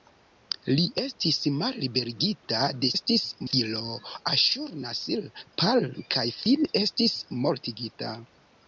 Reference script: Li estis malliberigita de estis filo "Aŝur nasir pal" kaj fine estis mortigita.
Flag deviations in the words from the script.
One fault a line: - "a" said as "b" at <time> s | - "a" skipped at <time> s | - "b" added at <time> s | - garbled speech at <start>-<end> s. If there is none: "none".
none